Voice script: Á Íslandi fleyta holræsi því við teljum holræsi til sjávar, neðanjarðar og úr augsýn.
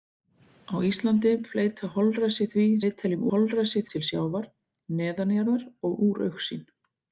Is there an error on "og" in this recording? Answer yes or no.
no